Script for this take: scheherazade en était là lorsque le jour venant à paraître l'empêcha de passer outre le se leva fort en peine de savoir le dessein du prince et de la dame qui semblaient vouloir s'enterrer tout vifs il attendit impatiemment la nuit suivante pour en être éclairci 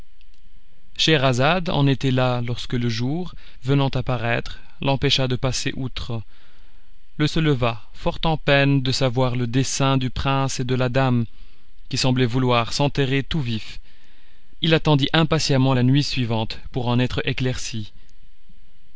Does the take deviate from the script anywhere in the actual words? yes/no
no